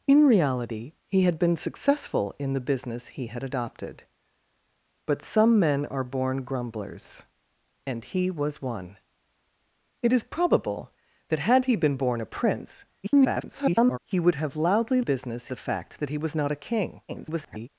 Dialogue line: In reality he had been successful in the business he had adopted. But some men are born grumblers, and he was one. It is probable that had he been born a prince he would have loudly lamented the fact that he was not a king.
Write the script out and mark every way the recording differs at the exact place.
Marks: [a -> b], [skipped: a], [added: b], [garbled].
In reality he had been successful in the business he had adopted. But some men are born grumblers, and he was one. It is probable that had he been born a prince [garbled] he would have loudly [lamented -> business] the fact that he was not a king. [garbled]